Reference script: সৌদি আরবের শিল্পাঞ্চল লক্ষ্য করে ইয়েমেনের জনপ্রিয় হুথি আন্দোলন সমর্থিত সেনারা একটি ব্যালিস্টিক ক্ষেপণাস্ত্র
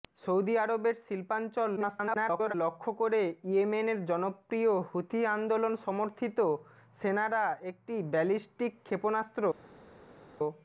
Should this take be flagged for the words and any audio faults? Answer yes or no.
yes